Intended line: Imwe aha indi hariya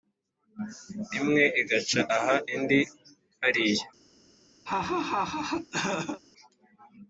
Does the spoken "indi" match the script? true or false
true